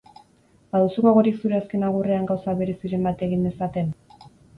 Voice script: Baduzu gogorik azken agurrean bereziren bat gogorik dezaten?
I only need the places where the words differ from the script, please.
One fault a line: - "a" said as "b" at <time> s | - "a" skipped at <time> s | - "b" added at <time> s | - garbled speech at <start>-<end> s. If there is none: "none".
- "zure" added at 1.4 s
- "gauza" added at 2.3 s
- "gogorik" said as "egin" at 3.3 s